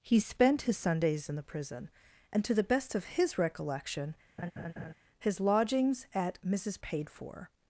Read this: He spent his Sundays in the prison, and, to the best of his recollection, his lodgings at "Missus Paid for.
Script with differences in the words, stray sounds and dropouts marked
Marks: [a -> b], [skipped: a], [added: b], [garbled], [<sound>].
He spent his Sundays in the prison, and, to the best of his recollection, [laugh] his lodgings at "Missus Paid for.